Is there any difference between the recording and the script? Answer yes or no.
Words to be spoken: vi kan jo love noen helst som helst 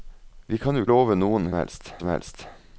no